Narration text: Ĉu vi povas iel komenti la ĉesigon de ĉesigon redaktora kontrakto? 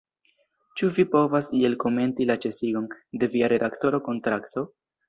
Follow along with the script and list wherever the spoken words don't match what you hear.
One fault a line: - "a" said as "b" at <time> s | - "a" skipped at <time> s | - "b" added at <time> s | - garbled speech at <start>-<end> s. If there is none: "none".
- "ĉesigon" said as "via" at 3.4 s